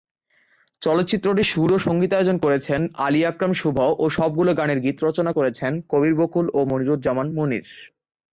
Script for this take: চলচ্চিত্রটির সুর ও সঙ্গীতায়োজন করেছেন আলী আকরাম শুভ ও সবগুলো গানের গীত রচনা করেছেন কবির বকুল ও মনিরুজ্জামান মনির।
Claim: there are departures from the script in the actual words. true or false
false